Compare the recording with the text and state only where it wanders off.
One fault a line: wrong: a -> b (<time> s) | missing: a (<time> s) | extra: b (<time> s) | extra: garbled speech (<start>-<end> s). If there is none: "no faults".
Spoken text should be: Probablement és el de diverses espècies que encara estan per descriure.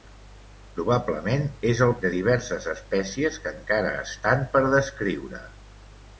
no faults